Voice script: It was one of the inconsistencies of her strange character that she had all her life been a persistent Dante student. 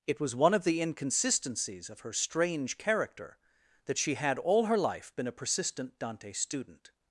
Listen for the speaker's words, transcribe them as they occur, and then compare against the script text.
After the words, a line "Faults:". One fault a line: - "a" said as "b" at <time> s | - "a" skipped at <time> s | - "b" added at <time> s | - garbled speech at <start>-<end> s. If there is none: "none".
It was one of the inconsistencies of her strange character that she had all her life been a persistent Dante student.
Faults:
none